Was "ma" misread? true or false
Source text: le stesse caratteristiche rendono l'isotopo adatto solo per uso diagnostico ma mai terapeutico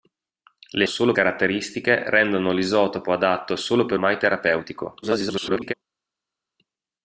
true